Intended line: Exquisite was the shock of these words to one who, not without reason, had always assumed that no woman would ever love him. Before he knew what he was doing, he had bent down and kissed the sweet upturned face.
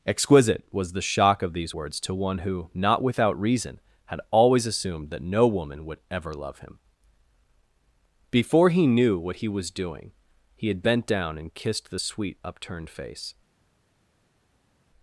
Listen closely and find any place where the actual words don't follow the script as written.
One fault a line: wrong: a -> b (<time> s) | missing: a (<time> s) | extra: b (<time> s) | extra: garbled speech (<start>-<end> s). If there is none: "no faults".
no faults